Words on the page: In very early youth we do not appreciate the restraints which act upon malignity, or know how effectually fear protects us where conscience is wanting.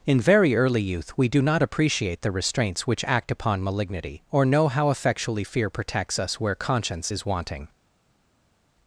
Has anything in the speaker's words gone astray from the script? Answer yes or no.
no